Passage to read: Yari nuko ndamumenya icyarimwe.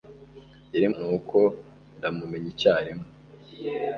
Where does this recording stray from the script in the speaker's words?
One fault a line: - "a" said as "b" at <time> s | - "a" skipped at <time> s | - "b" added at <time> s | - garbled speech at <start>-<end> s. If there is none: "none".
none